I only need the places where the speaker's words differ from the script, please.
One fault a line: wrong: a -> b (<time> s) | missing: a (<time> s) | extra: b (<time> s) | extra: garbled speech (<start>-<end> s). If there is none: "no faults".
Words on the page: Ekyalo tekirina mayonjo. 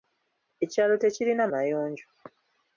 no faults